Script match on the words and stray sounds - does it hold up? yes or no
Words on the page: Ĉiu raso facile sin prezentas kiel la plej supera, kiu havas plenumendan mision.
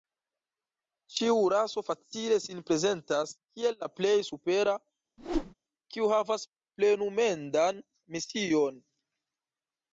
no